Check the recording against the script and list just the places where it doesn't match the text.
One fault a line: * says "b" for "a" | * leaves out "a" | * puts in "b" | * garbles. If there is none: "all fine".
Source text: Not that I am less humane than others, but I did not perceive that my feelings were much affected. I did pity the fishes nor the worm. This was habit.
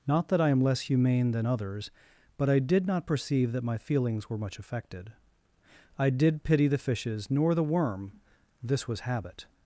all fine